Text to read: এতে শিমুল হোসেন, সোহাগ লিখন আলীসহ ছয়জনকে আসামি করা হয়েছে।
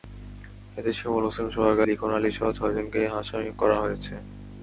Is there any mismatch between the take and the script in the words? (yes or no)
no